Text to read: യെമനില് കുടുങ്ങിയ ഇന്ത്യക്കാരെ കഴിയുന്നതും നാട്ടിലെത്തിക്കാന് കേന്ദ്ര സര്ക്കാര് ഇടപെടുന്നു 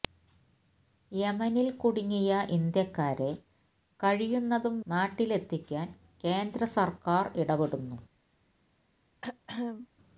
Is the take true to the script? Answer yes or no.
yes